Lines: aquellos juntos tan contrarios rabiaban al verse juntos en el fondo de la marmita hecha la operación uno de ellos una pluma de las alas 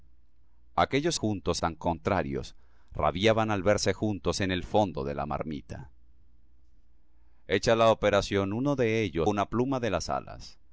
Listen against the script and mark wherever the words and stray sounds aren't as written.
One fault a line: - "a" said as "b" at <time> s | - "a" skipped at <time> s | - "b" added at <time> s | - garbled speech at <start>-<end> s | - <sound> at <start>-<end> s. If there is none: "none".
none